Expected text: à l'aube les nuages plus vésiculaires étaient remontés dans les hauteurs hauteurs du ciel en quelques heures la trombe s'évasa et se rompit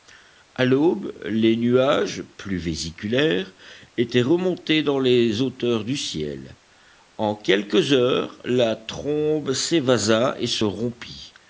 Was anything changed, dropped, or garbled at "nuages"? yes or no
no